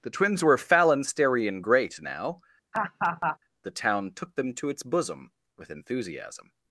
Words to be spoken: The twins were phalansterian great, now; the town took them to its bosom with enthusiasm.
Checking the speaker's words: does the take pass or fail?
pass